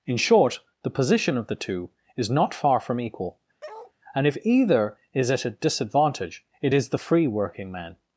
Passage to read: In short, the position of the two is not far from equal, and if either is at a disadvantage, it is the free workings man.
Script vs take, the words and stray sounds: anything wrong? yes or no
yes